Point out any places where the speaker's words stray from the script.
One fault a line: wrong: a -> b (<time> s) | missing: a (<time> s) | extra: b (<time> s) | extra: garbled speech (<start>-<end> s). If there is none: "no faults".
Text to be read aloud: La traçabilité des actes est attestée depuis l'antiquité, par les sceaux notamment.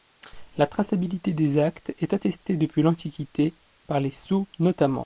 no faults